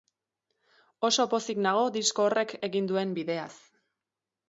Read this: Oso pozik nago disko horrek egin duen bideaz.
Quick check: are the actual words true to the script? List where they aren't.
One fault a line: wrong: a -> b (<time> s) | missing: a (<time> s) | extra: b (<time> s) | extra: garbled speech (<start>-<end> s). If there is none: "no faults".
no faults